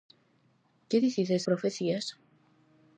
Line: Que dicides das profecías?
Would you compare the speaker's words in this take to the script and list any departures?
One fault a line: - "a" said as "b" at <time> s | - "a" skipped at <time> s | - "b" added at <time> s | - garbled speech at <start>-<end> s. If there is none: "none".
- "das" skipped at 1.4 s